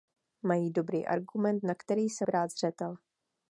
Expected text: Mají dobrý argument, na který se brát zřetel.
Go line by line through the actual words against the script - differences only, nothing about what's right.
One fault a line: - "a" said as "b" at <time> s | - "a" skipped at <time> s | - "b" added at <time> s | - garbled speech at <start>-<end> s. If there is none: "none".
none